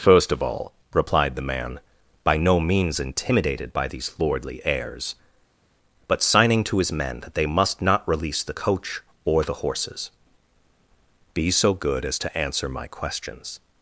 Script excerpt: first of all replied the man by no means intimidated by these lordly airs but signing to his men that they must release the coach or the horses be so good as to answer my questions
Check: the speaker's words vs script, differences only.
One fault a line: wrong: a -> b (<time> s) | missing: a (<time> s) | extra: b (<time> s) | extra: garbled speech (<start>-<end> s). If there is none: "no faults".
extra: not (7.8 s)